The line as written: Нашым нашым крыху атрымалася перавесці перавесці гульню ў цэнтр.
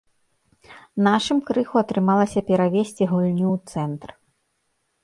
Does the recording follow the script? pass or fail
fail